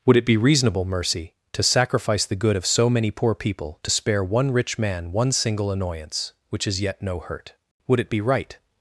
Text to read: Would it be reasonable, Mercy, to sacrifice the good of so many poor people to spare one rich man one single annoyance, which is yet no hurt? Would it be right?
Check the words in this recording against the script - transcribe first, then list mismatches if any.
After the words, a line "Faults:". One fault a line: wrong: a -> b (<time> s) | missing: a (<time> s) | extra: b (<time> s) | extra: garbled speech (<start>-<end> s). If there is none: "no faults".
Would it be reasonable, Mercy, to sacrifice the good of so many poor people to spare one rich man one single annoyance, which is yet no hurt? Would it be right?
Faults:
no faults